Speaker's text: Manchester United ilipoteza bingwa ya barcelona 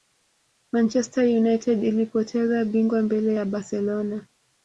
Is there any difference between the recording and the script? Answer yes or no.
yes